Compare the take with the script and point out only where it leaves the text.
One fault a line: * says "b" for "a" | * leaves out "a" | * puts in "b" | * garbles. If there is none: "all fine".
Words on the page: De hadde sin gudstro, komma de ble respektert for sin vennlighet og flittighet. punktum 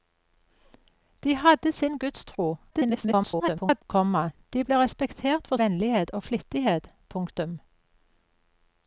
* garbles
* leaves out "sin"